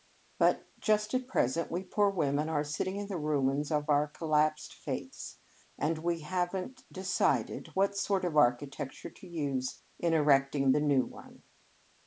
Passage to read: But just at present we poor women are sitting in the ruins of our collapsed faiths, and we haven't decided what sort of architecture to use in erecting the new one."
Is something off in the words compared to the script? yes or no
no